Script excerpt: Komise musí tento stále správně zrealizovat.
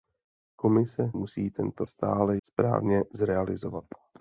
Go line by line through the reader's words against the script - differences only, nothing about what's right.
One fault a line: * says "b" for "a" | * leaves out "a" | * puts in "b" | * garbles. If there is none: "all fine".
all fine